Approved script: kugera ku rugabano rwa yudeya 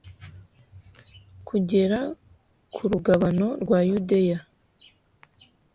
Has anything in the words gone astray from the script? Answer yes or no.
no